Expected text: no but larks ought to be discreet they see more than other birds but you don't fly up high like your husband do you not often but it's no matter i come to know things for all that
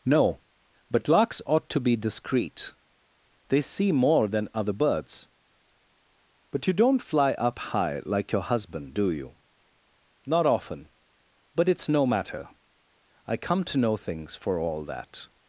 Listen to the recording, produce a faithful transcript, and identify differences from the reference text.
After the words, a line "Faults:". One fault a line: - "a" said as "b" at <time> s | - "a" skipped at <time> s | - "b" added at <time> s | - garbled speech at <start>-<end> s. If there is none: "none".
no but larks ought to be discreet they see more than other birds but you don't fly up high like your husband do you not often but it's no matter i come to know things for all that
Faults:
none